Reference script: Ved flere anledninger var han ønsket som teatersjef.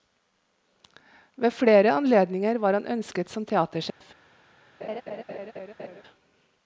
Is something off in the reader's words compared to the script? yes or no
no